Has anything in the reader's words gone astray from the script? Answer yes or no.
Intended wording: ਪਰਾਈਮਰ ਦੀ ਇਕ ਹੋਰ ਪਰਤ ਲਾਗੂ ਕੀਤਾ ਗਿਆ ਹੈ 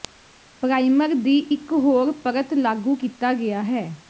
no